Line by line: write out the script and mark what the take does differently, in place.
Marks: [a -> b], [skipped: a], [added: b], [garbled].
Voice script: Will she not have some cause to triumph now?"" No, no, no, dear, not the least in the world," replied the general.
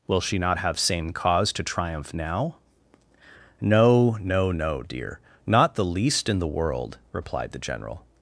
Will she not have [some -> same] cause to triumph now?"" No, no, no, dear, not the least in the world," replied the general.